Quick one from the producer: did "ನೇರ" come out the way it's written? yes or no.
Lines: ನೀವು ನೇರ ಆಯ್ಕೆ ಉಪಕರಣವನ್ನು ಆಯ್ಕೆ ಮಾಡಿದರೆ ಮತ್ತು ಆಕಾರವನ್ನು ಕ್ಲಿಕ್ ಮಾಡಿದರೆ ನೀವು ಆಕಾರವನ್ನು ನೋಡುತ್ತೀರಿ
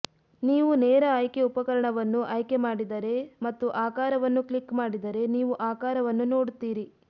yes